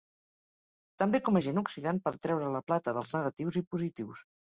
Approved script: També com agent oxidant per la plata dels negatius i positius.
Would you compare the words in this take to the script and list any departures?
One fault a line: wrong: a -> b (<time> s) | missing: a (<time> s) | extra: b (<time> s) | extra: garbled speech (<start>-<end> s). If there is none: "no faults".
extra: treure (2.3 s)